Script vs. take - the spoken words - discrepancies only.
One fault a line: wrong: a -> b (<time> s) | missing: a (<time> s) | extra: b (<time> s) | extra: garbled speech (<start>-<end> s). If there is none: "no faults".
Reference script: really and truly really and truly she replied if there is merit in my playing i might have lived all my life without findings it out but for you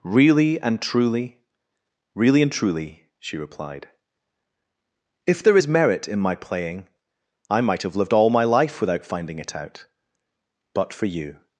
wrong: findings -> finding (9.1 s)